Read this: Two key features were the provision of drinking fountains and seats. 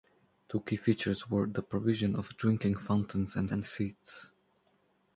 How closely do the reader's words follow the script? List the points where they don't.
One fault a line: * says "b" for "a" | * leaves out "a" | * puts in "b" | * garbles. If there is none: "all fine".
* puts in "and"